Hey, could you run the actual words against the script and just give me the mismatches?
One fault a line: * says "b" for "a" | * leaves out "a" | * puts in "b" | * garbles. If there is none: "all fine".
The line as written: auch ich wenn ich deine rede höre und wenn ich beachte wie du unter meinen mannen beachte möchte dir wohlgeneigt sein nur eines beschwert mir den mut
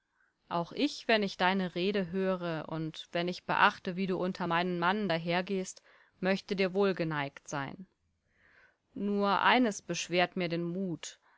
* says "dahergehst" for "beachte"